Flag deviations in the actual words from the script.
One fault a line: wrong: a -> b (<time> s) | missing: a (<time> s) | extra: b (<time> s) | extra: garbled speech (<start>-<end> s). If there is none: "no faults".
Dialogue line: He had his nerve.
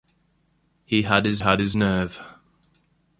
extra: had his (1.4 s)